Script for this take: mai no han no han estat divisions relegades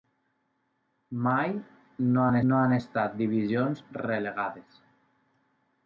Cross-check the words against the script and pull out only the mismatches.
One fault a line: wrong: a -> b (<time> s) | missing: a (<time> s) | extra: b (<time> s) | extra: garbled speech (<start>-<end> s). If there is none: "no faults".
no faults